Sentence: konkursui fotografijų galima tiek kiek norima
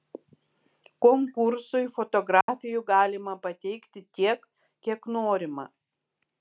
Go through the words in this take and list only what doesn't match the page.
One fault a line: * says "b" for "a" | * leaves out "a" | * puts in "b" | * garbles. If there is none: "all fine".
* puts in "pateikti"